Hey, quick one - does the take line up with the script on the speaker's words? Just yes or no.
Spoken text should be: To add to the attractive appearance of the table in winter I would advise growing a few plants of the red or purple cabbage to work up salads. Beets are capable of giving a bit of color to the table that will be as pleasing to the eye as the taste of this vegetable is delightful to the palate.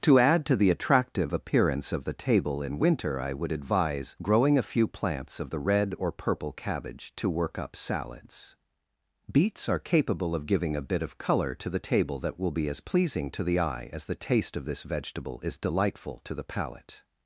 yes